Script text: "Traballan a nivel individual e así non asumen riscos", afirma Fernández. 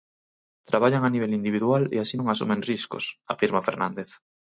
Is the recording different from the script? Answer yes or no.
no